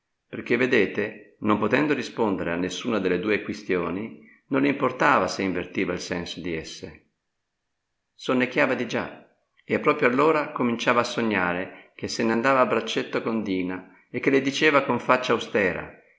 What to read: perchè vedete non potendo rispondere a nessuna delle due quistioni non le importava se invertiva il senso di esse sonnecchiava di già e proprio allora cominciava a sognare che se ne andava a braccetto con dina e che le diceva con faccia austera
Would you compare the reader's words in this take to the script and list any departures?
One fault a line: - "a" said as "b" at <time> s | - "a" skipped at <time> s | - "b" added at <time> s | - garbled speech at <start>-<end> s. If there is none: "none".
none